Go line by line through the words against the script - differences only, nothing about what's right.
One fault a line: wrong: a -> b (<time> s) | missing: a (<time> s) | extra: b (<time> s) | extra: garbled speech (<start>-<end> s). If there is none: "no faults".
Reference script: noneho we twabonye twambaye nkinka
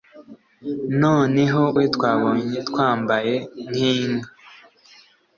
no faults